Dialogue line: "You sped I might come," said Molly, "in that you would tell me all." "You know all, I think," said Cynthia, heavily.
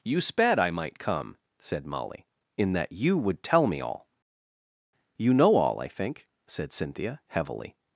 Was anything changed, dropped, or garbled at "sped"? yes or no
no